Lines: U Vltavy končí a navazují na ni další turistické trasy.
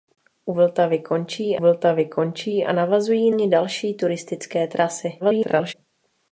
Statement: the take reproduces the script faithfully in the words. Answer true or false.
false